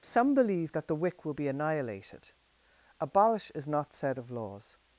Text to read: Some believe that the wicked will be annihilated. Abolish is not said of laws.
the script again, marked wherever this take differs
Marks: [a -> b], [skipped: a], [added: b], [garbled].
Some believe that the [wicked -> wick] will be annihilated. Abolish is not said of laws.